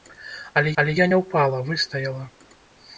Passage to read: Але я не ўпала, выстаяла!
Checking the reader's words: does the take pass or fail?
fail